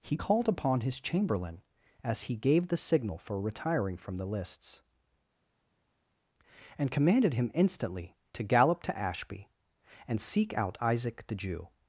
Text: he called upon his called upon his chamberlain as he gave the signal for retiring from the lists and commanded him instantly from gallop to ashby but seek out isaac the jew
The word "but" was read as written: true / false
false